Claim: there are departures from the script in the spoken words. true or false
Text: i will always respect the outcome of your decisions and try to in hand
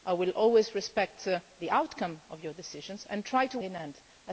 false